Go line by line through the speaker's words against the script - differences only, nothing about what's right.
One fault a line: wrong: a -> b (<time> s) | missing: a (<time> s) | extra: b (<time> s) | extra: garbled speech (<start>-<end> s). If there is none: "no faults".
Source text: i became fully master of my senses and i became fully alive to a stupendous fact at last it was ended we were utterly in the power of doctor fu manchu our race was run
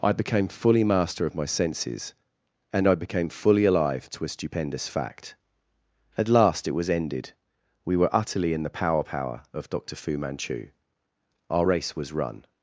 extra: power (9.0 s)